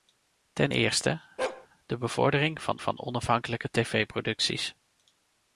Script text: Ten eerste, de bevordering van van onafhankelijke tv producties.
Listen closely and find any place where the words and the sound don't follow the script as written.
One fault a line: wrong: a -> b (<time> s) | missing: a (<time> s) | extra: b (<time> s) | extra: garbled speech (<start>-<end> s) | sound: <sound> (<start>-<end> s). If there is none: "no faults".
sound: bark (1.4-1.7 s)